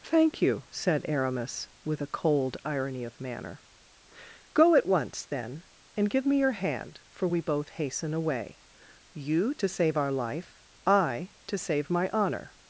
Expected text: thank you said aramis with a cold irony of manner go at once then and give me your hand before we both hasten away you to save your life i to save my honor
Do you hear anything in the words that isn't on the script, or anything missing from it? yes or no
yes